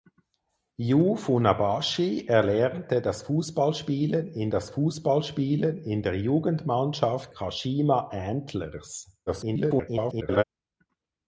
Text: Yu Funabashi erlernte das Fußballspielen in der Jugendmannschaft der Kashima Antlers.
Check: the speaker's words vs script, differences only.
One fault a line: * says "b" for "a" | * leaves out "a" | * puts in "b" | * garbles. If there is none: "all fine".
* puts in "das Fußballspielen in"
* leaves out "der"
* garbles